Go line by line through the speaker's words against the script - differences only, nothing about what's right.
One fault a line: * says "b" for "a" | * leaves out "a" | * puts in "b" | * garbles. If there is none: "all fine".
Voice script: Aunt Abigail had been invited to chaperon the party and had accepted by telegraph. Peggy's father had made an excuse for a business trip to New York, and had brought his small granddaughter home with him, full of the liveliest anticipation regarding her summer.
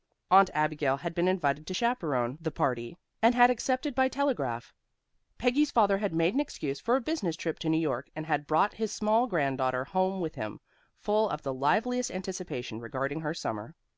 all fine